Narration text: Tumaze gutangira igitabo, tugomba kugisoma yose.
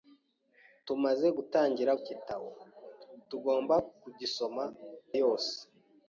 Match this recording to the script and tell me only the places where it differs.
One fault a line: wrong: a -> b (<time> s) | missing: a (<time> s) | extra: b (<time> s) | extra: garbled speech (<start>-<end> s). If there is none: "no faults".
no faults